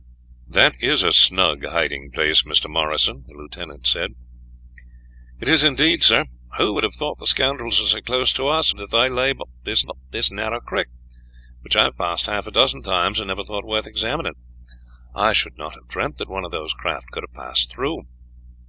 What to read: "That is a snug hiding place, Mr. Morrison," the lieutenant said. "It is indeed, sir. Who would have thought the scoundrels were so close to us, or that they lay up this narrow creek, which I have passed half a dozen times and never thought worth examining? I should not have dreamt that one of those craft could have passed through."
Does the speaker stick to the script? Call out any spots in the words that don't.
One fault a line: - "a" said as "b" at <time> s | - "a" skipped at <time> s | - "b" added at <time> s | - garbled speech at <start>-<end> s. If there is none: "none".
- "or" skipped at 8.7 s
- "up this" added at 9.8 s